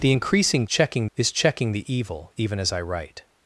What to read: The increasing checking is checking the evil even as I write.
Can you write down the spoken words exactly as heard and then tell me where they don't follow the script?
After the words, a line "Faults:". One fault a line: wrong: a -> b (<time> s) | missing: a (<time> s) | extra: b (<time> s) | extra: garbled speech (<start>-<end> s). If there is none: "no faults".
The increasing checking is checking the evil even as I write.
Faults:
no faults